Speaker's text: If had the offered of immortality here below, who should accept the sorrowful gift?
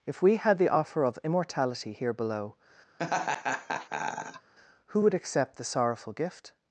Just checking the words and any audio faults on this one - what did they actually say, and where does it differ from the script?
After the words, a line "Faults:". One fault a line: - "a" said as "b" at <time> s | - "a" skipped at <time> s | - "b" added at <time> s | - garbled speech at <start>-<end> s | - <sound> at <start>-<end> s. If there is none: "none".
If we had the offer of immortality here below, who would accept the sorrowful gift?
Faults:
- "we" added at 0.2 s
- "offered" said as "offer" at 0.7 s
- laugh at 3.0-4.5 s
- "should" said as "would" at 5.0 s